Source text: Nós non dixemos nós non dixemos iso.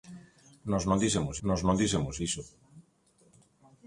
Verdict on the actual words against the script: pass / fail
pass